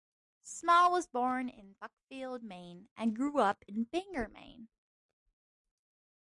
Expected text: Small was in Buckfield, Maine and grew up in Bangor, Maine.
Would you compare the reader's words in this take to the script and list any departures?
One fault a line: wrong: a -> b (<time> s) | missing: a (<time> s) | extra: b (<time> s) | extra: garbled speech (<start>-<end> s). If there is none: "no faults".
extra: born (1.1 s)